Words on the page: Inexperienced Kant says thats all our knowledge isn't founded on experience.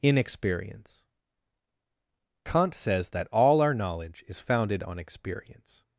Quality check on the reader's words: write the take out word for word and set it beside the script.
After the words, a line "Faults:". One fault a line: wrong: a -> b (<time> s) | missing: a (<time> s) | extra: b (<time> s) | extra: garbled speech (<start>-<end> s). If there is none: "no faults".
Inexperience Kant says that all our knowledge is founded on experience.
Faults:
wrong: Inexperienced -> Inexperience (0.0 s)
wrong: thats -> that (3.1 s)
wrong: isn't -> is (4.3 s)